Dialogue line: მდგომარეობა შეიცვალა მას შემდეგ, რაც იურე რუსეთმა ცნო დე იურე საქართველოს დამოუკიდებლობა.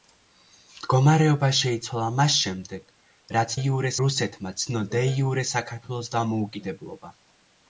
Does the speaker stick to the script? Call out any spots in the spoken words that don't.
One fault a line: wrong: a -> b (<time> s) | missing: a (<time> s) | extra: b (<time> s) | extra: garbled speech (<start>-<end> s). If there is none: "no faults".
no faults